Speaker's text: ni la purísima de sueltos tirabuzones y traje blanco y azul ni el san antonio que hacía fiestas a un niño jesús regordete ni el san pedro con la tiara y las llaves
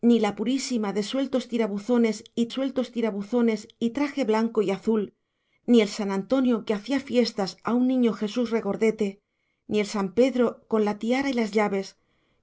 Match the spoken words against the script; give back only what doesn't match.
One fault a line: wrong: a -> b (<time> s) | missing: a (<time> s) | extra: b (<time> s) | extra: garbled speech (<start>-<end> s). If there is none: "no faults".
extra: sueltos tirabuzones y (2.5 s)